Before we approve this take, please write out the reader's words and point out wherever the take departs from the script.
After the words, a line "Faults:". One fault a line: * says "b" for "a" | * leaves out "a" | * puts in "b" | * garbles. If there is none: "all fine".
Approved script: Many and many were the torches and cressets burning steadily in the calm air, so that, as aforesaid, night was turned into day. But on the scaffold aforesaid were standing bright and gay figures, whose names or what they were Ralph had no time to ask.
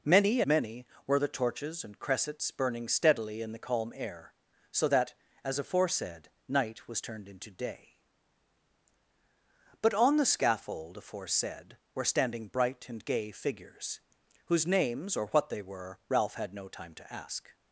Many many were the torches and cressets burning steadily in the calm air, so that, as aforesaid, night was turned into day. But on the scaffold aforesaid were standing bright and gay figures, whose names or what they were Ralph had no time to ask.
Faults:
* leaves out "and"